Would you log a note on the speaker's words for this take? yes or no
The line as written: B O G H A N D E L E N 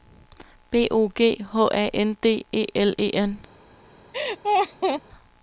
no